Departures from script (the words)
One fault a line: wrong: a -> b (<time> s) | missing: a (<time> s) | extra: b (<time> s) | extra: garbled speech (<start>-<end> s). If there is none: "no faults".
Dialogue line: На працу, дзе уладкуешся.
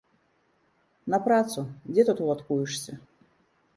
extra: тут (2.1 s)